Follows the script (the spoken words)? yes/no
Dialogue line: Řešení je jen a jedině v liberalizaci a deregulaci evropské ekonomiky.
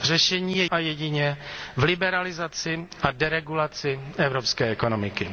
no